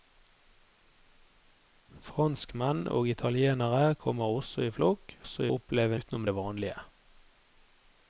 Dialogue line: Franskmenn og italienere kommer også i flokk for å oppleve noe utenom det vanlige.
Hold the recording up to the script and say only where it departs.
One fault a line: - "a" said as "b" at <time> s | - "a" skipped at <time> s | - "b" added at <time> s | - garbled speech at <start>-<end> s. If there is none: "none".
- "for" said as "også" at 5.2 s
- "noe" skipped at 6.0 s